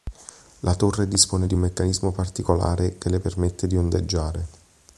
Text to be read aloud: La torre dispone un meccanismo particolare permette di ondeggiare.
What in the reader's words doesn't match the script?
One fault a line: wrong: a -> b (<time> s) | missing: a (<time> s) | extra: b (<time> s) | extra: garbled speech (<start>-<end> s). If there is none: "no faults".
extra: di (1.4 s)
extra: che le (3.0 s)